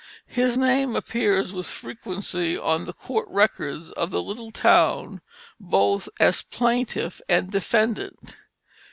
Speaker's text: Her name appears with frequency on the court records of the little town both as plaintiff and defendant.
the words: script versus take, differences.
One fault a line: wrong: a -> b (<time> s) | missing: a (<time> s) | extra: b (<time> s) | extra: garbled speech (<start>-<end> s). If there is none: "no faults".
wrong: Her -> His (0.3 s)